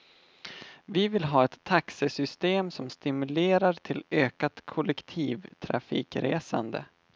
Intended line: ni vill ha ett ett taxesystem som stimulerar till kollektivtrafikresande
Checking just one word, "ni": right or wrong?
wrong